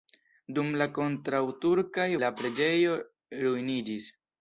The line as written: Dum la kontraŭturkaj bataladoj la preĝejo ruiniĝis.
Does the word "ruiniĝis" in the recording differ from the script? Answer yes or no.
no